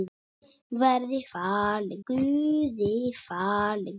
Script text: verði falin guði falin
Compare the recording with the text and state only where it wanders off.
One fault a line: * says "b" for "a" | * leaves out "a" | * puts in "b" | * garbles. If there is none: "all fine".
all fine